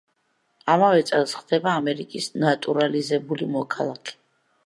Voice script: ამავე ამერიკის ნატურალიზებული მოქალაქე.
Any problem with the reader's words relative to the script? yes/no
yes